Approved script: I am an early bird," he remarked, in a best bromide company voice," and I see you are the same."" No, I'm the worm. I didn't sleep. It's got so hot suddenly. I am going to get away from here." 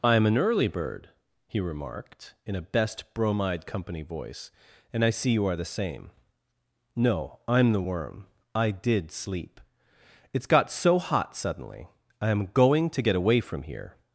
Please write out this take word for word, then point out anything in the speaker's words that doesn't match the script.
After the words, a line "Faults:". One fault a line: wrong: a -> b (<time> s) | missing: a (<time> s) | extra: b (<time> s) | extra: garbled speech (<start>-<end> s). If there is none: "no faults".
I am an early bird," he remarked, in a best bromide company voice," and I see you are the same."" No, I'm the worm. I did sleep. It's got so hot suddenly. I am going to get away from here."
Faults:
wrong: didn't -> did (8.7 s)